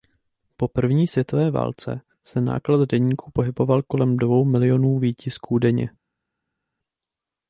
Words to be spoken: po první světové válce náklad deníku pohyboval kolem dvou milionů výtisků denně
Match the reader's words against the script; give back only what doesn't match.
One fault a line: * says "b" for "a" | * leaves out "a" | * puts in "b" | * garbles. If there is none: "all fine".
* puts in "se"